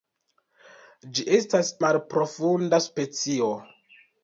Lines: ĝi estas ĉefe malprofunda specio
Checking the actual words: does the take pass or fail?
fail